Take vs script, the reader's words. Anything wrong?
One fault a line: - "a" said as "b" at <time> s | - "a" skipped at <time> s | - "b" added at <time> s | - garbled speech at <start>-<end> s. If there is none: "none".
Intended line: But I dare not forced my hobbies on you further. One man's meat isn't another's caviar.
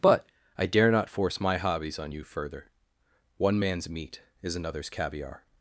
- "forced" said as "force" at 1.1 s
- "isn't" said as "is" at 4.4 s